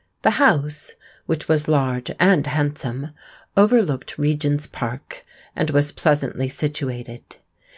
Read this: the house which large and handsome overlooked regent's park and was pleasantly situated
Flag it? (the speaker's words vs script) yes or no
yes